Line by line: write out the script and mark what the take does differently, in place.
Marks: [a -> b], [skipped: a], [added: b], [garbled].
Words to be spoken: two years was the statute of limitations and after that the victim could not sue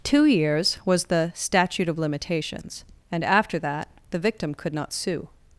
two years was the statute of limitations and after that the victim could not sue